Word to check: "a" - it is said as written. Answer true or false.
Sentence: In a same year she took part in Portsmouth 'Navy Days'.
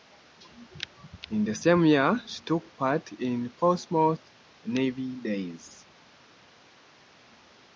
false